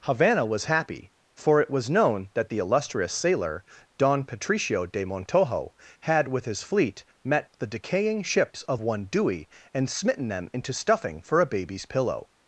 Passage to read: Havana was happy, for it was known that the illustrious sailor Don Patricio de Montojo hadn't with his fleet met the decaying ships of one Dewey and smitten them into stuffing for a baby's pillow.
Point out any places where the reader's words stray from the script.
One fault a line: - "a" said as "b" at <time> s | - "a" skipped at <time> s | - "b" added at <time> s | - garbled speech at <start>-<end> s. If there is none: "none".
- "hadn't" said as "had" at 6.0 s